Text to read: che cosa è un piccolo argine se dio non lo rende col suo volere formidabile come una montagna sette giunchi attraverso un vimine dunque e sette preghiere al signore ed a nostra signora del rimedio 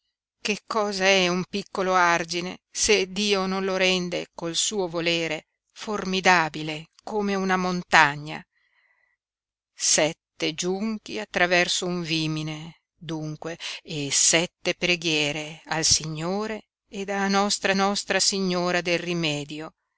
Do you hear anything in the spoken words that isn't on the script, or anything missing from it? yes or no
yes